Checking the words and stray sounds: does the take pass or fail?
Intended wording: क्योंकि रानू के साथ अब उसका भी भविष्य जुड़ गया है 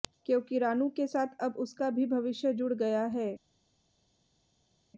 pass